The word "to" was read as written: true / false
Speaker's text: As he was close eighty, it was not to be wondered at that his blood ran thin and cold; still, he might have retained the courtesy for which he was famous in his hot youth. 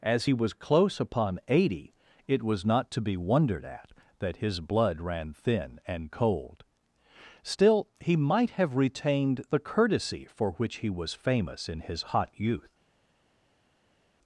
true